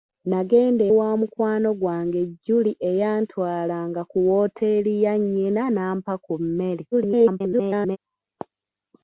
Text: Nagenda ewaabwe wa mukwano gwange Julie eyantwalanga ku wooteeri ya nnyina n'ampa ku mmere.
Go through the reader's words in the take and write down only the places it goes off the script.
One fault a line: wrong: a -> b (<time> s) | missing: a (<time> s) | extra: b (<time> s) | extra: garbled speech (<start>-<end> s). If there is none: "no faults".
missing: ewaabwe (0.8 s)
extra: garbled speech (6.9-8.0 s)